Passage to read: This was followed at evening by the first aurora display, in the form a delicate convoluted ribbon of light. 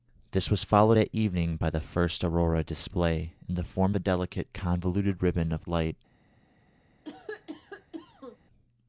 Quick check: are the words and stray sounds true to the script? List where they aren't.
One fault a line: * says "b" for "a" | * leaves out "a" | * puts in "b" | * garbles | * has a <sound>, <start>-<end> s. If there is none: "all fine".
* has a cough, 7.0-8.4 s